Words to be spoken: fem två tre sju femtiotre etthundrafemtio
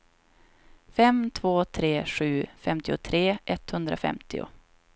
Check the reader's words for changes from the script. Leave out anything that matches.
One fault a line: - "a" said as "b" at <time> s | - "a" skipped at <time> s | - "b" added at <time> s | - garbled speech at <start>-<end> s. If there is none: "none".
none